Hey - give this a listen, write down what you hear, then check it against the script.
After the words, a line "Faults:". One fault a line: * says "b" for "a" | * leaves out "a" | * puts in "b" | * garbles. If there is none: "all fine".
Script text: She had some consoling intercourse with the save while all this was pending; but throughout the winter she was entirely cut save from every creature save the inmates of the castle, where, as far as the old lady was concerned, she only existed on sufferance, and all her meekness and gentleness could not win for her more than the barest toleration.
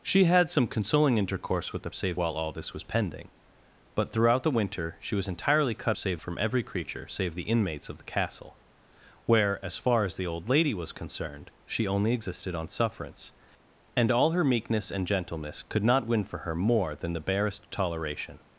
She had some consoling intercourse with the save while all this was pending; but throughout the winter she was entirely cut save from every creature save the inmates of the castle, where, as far as the old lady was concerned, she only existed on sufferance, and all her meekness and gentleness could not win for her more than the barest toleration.
Faults:
all fine